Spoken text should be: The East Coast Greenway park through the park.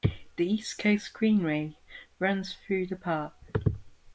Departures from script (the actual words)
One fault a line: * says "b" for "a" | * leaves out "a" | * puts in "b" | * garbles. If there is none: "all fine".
* says "runs" for "park"